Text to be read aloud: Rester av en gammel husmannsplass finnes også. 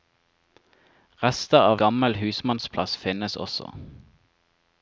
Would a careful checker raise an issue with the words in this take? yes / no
yes